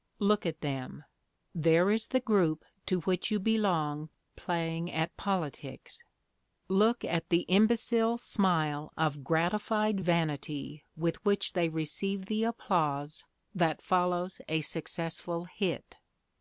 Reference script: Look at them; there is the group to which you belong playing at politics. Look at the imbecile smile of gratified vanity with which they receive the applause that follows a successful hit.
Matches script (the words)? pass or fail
pass